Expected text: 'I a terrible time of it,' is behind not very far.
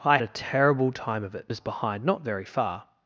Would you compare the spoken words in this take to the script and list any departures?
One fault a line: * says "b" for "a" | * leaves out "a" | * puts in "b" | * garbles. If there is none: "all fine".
all fine